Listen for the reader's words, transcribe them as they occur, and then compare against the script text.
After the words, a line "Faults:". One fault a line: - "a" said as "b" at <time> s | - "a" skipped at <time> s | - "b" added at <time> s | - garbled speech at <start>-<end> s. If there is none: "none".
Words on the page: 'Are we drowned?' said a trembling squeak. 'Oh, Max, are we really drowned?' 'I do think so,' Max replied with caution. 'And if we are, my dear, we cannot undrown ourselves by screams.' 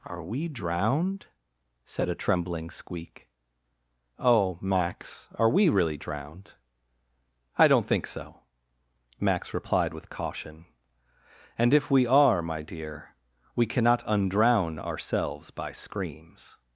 'Are we drowned?' said a trembling squeak. 'Oh, Max, are we really drowned?' 'I don't think so,' Max replied with caution. 'And if we are, my dear, we cannot undrown ourselves by screams.'
Faults:
- "do" said as "don't" at 7.7 s